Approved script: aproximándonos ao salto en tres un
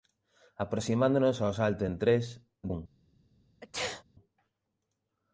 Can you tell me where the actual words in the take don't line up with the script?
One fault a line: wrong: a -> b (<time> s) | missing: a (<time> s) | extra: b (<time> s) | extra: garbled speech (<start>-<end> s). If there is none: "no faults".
no faults